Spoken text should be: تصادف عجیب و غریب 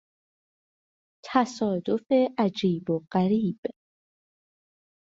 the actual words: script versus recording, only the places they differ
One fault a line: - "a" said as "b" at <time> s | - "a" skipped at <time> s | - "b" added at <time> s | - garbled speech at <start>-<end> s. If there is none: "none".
none